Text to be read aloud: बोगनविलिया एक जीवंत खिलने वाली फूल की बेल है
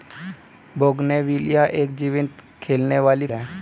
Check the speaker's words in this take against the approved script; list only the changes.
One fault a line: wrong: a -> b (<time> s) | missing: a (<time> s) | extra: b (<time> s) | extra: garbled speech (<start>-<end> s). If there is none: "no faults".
missing: फूल की बेल (3.3 s)